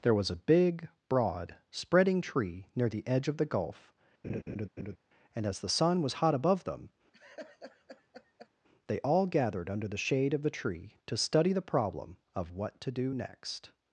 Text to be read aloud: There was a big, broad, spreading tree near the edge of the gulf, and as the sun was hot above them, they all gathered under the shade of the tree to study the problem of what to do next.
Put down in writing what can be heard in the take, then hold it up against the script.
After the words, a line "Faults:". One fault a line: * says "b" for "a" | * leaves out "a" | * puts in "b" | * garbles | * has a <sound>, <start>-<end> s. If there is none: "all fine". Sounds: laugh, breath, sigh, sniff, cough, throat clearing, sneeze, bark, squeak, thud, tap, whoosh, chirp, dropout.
There was a big, broad, spreading tree near the edge of the gulf, and as the sun was hot above them, they all gathered under the shade of the tree to study the problem of what to do next.
Faults:
* has a laugh, 4.2-5.0 s
* has a laugh, 7.1-8.5 s